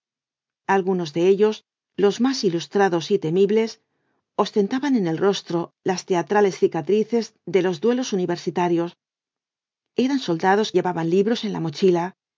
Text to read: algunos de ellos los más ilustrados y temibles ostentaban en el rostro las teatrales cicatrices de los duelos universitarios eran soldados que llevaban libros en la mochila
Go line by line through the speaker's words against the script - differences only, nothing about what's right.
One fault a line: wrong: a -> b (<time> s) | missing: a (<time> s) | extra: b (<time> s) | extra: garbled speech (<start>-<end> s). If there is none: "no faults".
missing: que (10.7 s)